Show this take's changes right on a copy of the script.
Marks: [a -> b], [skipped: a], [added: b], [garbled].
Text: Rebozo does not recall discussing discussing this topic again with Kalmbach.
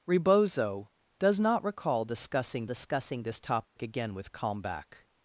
Rebozo does not recall discussing discussing this topic again with Kalmbach.